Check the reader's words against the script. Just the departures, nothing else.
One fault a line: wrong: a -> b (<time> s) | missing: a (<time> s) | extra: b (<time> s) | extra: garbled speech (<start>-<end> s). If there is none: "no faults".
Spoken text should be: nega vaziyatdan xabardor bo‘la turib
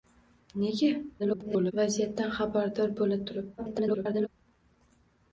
extra: garbled speech (1.2-1.7 s)
extra: garbled speech (3.6-4.3 s)